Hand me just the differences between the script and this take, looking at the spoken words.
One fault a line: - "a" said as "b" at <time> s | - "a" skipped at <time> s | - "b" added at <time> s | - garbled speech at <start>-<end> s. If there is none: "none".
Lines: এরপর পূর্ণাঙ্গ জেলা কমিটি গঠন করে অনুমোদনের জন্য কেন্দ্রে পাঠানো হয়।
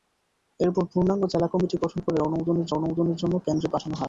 - "অনুমোদনের" added at 2.7 s